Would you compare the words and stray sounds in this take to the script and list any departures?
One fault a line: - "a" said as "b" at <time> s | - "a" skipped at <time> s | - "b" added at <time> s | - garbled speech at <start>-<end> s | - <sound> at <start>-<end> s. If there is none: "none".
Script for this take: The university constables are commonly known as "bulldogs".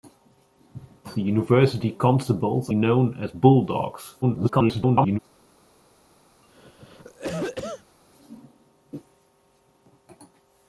- "are commonly" skipped at 2.7 s
- garbled speech at 4.2-5.2 s
- cough at 6.4-8.0 s